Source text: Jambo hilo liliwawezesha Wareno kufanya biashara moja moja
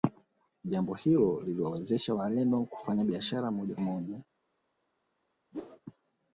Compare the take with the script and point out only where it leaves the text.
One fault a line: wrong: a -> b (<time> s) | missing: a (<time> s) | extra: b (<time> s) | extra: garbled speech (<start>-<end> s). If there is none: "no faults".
no faults